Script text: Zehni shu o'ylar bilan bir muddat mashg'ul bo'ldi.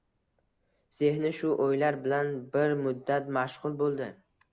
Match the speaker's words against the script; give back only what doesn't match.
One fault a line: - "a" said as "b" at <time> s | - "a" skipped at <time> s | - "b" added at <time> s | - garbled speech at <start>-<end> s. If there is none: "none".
none